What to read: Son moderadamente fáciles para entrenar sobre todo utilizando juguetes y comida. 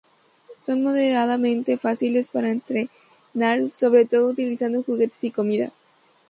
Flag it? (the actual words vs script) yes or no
no